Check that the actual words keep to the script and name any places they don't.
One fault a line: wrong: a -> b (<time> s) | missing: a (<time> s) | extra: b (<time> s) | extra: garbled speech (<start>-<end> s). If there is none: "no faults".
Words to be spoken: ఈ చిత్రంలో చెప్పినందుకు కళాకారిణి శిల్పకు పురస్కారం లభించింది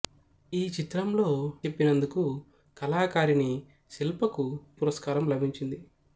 no faults